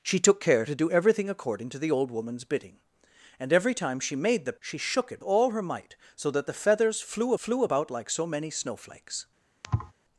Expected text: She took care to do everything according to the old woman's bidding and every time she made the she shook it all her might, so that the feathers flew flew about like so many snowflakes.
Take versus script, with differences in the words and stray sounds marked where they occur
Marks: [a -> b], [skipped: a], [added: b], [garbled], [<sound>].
She took care to do everything according to the old woman's bidding and every time she made the she shook it all her might, so that the feathers flew flew about like so many snowflakes. [thud]